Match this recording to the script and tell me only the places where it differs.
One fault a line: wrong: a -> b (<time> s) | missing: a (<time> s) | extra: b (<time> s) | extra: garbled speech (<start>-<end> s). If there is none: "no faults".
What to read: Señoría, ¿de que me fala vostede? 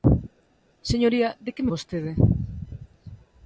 missing: me fala (1.7 s)